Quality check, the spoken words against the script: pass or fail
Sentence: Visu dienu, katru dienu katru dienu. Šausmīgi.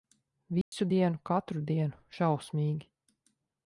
fail